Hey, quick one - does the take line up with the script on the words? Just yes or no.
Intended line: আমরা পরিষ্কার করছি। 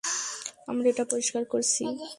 no